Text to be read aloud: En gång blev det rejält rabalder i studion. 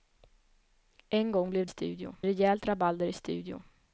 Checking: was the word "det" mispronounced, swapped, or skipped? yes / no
yes